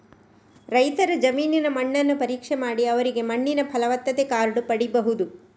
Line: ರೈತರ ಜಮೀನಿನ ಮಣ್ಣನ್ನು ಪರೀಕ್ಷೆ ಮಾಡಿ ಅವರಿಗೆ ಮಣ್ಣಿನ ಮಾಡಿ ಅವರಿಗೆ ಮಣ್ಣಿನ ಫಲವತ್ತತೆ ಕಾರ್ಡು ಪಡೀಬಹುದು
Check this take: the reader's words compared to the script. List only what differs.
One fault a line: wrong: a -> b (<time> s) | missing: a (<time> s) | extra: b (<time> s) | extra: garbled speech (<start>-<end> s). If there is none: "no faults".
missing: ಮಾಡಿ ಅವರಿಗೆ ಮಣ್ಣಿನ (3.6 s)